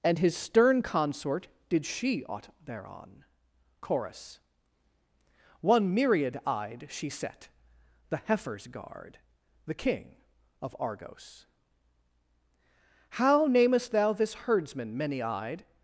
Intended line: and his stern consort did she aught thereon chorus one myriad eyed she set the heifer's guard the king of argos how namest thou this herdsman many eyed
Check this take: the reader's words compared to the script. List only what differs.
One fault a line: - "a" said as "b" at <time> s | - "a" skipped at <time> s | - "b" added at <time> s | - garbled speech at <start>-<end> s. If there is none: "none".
none